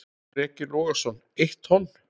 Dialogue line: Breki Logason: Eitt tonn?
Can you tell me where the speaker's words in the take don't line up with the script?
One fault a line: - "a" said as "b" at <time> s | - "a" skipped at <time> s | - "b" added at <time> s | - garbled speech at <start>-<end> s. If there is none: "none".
none